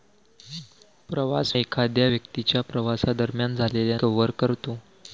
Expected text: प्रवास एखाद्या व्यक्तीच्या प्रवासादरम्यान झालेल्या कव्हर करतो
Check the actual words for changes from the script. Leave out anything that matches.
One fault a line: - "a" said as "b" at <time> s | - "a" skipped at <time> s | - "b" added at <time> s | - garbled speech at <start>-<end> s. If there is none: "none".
none